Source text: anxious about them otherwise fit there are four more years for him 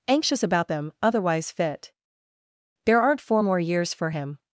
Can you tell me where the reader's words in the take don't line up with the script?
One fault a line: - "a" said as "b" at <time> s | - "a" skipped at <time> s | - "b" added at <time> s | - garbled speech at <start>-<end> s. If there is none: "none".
- "are" said as "aren't" at 3.0 s